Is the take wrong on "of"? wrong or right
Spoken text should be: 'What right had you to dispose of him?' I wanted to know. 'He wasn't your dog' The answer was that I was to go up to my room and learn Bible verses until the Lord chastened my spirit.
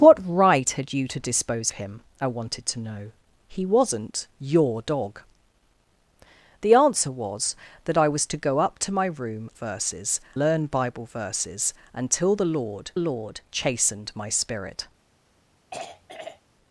wrong